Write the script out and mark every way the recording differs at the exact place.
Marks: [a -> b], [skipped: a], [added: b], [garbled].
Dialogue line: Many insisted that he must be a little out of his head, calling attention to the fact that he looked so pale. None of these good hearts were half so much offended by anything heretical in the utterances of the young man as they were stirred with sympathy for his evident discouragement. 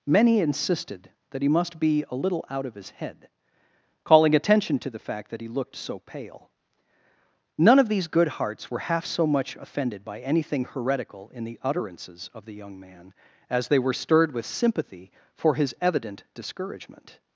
Many insisted that he must be a little out of his head, calling attention to the fact that he looked so pale. None of these good hearts were half so much offended by anything heretical in the utterances of the young man as they were stirred with sympathy for his evident discouragement.